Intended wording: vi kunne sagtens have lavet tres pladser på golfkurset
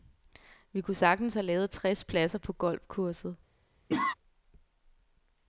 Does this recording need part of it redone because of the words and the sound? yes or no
yes